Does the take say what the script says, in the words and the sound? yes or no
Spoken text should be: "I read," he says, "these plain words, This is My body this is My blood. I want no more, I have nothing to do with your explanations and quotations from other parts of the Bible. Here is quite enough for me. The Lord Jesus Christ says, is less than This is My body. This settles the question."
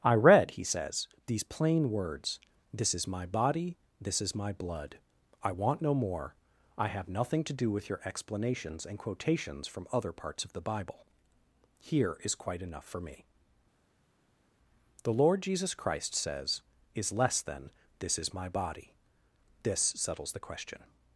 yes